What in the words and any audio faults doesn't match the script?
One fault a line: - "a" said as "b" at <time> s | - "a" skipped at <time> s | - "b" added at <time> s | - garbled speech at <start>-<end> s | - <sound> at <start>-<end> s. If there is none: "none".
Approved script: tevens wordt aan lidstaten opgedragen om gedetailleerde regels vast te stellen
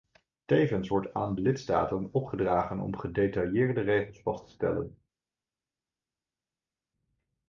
none